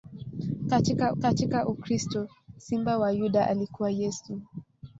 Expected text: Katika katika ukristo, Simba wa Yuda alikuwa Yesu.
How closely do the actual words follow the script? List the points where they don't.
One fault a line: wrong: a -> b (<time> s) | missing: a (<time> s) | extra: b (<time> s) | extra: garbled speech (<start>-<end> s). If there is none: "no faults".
no faults